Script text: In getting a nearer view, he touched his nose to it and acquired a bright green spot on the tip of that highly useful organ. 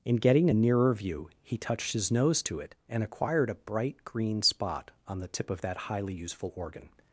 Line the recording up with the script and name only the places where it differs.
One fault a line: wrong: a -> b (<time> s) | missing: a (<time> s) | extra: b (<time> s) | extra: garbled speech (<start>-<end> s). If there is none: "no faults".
no faults